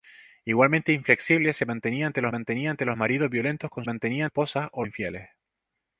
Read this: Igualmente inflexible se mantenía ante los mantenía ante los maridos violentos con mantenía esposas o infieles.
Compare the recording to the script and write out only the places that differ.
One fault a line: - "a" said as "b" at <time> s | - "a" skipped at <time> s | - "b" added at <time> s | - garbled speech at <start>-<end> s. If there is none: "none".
none